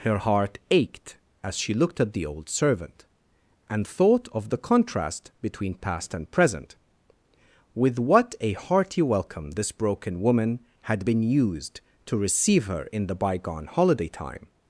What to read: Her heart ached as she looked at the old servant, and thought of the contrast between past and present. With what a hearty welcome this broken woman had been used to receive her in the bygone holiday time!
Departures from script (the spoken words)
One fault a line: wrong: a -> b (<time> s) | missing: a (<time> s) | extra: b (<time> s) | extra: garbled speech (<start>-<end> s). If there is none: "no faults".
no faults